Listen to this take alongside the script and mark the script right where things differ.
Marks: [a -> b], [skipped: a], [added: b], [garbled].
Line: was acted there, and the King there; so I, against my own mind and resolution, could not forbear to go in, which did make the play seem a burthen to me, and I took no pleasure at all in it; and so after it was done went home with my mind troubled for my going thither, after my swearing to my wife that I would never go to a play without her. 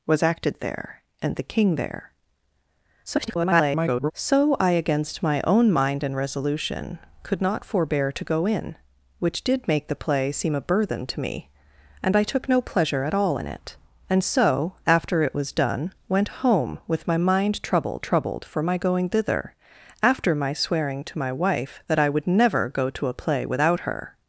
was acted there, and the King there; [garbled] so I, against my own mind and resolution, could not forbear to go in, which did make the play seem a burthen to me, and I took no pleasure at all in it; and so after it was done went home with my mind troubled [added: troubled] for my going thither, after my swearing to my wife that I would never go to a play without her.